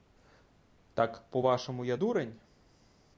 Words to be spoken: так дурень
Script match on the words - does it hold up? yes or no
no